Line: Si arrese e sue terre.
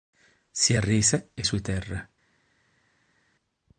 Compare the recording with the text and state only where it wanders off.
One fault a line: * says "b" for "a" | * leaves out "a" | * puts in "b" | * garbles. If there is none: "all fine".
all fine